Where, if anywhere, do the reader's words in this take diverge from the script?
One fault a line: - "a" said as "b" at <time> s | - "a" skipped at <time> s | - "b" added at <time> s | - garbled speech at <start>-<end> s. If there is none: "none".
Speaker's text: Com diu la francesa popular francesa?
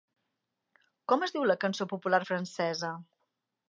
- "es" added at 1.3 s
- "francesa" said as "cançó" at 1.7 s